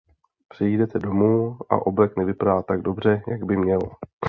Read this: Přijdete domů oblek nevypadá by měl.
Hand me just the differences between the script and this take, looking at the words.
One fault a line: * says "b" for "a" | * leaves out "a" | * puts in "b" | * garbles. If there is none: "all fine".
* puts in "a"
* puts in "tak dobře jak"